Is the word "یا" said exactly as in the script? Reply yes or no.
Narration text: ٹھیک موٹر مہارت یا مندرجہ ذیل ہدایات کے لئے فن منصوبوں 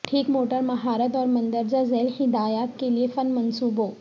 no